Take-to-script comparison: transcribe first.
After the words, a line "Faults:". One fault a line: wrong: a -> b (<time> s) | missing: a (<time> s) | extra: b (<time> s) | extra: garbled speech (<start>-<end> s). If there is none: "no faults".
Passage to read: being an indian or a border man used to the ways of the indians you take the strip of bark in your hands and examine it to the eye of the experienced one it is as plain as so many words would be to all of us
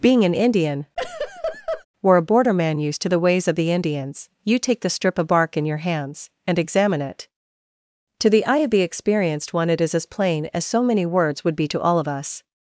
being an indian or a border man used to the ways of the indians you take the strip of bark in your hands and examine it to the eye of the experienced one it is as plain as so many words would be to all of us
Faults:
no faults